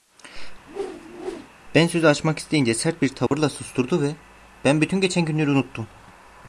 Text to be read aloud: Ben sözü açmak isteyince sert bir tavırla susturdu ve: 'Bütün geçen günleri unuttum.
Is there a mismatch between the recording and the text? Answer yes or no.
yes